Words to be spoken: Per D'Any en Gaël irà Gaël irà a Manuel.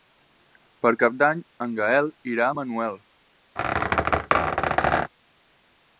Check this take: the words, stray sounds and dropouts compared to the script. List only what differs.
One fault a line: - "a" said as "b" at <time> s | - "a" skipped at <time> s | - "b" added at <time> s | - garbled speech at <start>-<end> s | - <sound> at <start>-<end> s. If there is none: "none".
- "Cap" added at 1.0 s
- "Gaël irà" skipped at 2.5 s
- squeak at 3.6-5.1 s